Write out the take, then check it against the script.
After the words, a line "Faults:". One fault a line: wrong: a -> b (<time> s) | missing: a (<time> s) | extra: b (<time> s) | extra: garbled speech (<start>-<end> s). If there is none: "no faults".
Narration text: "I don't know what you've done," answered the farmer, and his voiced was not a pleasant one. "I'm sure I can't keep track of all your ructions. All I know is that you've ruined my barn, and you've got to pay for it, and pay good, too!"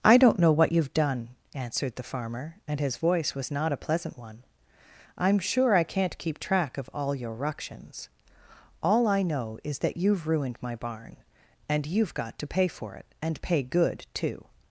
"I don't know what you've done," answered the farmer, and his voice was not a pleasant one. "I'm sure I can't keep track of all your ructions. All I know is that you've ruined my barn, and you've got to pay for it, and pay good, too!"
Faults:
wrong: voiced -> voice (3.0 s)